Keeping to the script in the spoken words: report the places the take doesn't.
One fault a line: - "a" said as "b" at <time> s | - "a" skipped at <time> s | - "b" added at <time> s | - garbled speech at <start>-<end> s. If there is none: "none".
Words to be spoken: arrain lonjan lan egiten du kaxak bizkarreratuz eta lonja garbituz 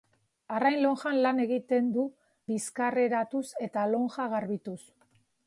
- "kaxak" skipped at 2.0 s